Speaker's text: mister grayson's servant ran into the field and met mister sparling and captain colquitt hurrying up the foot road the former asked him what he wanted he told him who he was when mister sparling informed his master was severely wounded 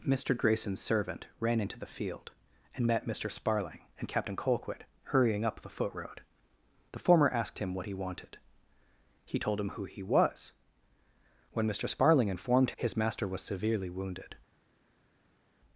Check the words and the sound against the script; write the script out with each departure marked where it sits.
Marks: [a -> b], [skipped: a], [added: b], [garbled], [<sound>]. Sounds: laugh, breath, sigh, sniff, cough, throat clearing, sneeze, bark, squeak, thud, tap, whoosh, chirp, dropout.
mister grayson's servant ran into the field and met mister sparling and captain colquitt hurrying up the foot road the former asked him what he wanted he told him who he was when mister sparling informed his master was severely wounded